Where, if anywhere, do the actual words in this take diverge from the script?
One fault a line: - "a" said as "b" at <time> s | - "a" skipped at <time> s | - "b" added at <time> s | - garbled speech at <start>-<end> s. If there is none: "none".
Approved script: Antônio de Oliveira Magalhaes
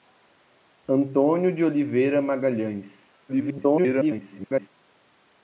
- garbled speech at 3.3-4.7 s